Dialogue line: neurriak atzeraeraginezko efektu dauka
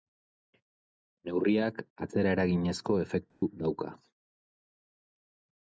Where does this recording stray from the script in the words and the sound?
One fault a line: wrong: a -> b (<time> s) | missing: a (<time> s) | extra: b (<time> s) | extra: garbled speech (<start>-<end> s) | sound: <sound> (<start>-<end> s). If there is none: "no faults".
sound: dropout (3.3-3.4 s)